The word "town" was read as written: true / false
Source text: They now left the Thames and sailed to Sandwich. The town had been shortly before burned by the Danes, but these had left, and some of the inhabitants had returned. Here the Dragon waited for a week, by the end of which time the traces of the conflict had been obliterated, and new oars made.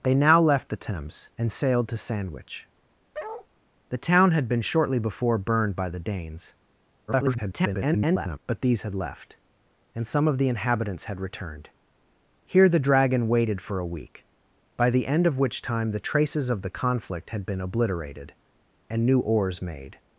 true